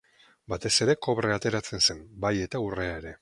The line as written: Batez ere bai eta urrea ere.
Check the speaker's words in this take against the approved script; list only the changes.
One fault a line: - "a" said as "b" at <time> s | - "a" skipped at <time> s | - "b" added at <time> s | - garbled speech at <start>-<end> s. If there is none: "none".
- "kobrea ateratzen zen" added at 1.1 s